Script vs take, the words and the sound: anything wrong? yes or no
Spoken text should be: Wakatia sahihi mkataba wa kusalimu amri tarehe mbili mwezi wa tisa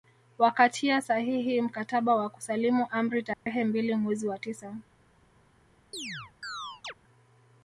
yes